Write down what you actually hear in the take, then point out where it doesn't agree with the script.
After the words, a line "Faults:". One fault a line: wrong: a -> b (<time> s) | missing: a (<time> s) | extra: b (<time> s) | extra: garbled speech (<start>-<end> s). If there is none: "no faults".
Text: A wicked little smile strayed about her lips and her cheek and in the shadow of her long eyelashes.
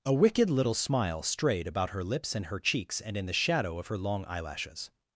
A wicked little smile strayed about her lips and her cheeks and in the shadow of her long eyelashes.
Faults:
wrong: cheek -> cheeks (2.6 s)